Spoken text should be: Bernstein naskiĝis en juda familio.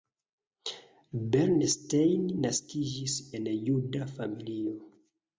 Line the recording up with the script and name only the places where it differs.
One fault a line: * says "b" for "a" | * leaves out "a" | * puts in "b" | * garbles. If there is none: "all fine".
all fine